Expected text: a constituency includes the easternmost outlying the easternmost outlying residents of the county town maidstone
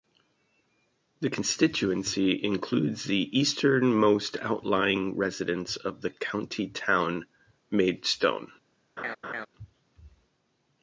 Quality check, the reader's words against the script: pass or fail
fail